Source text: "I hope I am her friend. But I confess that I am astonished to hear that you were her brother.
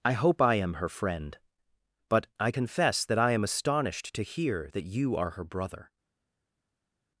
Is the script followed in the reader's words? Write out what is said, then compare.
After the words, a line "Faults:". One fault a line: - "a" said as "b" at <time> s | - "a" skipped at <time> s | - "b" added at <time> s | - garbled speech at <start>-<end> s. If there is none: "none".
"I hope I am her friend. But I confess that I am astonished to hear that you are her brother.
Faults:
- "were" said as "are" at 5.2 s